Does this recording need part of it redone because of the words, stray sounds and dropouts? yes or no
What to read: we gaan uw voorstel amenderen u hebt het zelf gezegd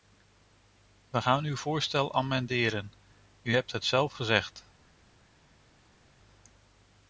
no